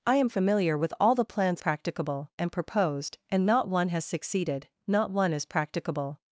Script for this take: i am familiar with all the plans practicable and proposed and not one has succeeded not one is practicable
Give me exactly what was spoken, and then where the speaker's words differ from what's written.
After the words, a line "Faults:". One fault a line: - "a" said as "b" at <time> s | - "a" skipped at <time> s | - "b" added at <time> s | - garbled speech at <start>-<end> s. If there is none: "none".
i am familiar with all the plans practicable and proposed and not one has succeeded not one is practicable
Faults:
none